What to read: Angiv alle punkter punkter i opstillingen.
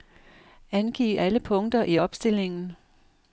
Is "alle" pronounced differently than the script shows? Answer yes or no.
no